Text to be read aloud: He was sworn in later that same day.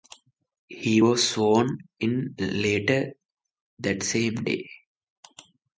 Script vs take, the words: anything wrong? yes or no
no